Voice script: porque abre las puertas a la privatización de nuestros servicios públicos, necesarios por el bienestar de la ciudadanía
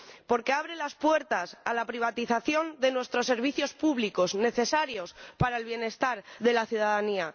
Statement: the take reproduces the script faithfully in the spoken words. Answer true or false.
false